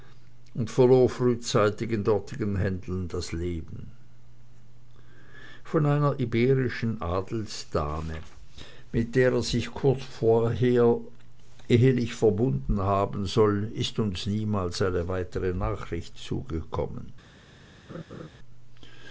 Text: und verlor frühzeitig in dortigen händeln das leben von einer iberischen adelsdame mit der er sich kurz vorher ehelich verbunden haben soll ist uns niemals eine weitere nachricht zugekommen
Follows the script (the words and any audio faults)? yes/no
no